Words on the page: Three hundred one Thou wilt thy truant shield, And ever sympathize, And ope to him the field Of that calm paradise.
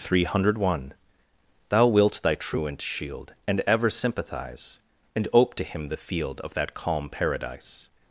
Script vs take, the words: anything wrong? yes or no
no